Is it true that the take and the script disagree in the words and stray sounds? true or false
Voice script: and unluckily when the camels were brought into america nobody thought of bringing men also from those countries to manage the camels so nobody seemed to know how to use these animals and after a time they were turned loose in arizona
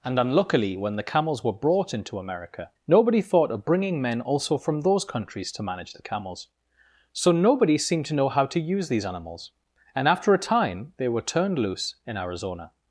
false